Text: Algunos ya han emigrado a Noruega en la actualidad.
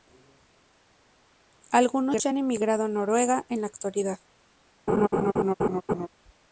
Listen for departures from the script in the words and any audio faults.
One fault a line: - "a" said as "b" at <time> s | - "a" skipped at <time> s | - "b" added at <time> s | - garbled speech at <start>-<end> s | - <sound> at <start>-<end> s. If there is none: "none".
- laugh at 4.9-6.1 s